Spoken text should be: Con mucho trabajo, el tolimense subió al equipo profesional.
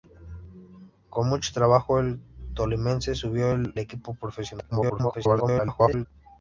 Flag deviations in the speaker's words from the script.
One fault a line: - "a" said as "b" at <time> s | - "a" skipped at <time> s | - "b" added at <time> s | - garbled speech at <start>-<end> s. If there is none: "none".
- "al" skipped at 3.5 s
- garbled speech at 4.7-6.1 s